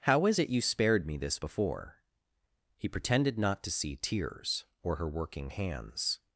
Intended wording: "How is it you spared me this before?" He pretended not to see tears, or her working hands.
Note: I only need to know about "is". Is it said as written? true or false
true